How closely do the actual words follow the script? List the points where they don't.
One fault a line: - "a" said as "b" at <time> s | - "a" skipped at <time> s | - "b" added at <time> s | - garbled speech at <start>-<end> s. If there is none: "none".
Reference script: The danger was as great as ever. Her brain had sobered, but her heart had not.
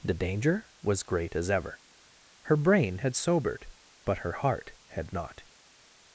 - "as" skipped at 1.0 s